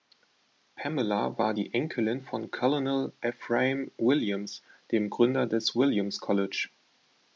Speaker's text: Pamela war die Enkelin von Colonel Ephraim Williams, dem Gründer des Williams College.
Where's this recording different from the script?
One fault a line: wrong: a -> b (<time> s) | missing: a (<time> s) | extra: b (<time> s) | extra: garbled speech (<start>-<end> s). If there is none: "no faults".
no faults